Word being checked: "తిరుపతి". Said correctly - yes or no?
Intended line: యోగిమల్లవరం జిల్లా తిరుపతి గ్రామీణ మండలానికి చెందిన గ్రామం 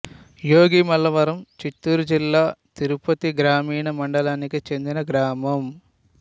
yes